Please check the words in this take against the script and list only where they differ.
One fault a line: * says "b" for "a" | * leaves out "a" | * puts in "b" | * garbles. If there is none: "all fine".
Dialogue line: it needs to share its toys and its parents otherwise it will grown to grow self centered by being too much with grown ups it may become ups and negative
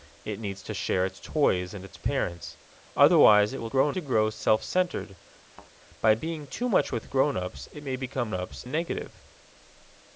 all fine